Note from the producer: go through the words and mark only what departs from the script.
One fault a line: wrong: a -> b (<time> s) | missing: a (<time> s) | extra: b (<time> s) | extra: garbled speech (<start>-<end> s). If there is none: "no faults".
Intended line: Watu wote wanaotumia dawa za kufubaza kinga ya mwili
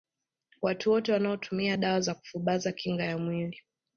no faults